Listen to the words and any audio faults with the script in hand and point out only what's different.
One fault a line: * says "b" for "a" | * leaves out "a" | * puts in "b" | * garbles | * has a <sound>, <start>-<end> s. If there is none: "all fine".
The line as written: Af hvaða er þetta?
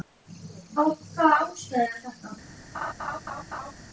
* puts in "ástæðu"
* has a laugh, 2.7-3.7 s